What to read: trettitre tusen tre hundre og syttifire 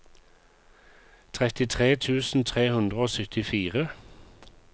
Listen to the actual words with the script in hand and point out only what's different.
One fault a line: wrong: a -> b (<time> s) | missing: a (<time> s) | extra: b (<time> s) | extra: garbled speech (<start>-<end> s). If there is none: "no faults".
no faults